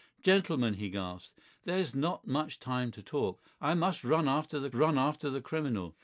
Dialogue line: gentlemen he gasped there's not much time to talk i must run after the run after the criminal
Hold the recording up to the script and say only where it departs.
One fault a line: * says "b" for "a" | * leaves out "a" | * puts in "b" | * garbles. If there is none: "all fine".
all fine